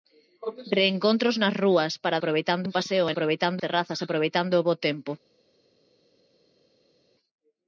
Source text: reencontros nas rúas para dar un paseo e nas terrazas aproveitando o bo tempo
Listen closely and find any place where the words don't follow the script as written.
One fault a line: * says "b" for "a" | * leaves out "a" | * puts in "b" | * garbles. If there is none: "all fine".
* says "aproveitando" for "dar"
* says "aproveitando" for "nas"